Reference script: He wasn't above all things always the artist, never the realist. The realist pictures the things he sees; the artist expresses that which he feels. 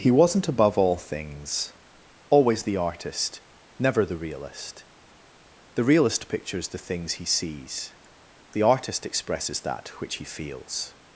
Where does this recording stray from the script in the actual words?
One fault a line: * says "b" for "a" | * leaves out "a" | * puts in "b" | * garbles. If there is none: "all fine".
all fine